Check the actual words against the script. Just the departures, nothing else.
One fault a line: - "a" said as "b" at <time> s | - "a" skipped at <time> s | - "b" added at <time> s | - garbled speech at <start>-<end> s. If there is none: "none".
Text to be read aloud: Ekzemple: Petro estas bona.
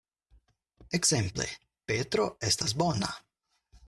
none